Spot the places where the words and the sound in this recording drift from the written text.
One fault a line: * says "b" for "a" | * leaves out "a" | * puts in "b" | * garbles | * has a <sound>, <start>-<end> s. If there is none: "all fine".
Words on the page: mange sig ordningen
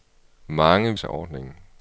all fine